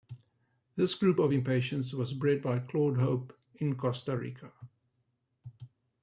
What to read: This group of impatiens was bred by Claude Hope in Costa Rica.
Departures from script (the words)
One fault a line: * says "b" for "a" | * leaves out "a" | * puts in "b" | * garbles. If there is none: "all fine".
all fine